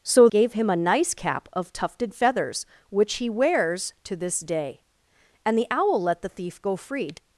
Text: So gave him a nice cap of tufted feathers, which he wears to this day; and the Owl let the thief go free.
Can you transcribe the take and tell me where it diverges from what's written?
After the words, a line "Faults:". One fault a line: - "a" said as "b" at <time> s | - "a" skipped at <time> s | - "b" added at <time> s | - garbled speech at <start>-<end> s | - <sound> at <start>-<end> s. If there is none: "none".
So gave him a nice cap of tufted feathers, which he wears to this day; and the Owl let the thief go free.
Faults:
none